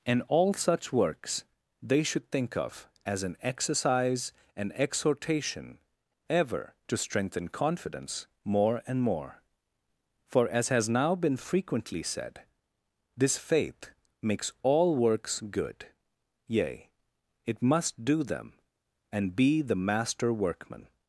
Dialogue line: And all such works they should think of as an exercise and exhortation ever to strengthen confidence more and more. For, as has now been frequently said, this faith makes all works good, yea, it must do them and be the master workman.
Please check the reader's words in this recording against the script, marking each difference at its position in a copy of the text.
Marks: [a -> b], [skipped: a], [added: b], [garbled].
And all such works they should think of as an exercise and exhortation ever to strengthen confidence more and more. For, as has now been frequently said, this faith makes all works good, yea, it must do them and be the master workman.